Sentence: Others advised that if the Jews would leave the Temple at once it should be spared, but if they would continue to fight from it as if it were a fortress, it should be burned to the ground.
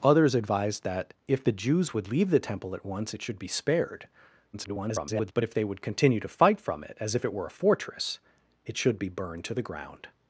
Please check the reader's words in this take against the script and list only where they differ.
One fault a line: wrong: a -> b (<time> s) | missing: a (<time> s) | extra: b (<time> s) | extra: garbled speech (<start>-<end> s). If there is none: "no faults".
extra: garbled speech (4.5-5.3 s)